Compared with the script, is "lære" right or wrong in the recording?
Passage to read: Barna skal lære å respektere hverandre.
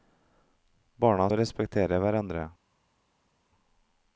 wrong